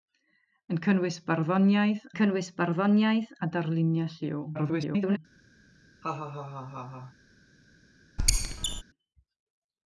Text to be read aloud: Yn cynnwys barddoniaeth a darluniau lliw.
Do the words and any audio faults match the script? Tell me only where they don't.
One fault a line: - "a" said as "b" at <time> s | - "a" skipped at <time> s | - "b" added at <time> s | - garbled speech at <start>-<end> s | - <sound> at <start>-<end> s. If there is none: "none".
- "cynnwys barddoniaeth" added at 2.2 s
- garbled speech at 4.5-5.2 s
- laugh at 6.0-7.1 s
- squeak at 8.2-8.8 s